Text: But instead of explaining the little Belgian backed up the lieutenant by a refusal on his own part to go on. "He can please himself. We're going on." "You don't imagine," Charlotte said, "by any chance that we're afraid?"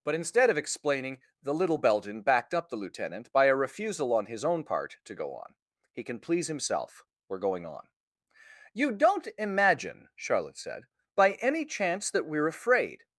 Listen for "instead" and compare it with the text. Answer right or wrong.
right